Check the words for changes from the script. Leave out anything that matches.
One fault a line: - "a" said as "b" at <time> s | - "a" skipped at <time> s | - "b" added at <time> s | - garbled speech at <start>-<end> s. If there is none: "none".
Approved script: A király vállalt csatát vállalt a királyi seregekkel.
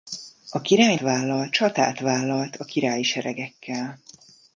none